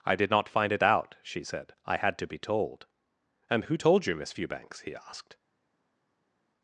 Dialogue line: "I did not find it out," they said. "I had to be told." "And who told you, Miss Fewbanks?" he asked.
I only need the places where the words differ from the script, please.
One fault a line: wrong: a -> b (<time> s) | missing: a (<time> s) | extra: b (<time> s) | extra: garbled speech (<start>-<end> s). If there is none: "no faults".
wrong: they -> she (1.2 s)